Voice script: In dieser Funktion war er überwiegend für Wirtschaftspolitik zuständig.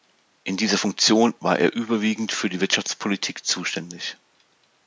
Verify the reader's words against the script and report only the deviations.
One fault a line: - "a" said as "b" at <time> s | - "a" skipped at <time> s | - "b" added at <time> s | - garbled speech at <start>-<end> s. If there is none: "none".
- "die" added at 2.5 s